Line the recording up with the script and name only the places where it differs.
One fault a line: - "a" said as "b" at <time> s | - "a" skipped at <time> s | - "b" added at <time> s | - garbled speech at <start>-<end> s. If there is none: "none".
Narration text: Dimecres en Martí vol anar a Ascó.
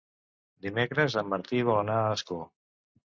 none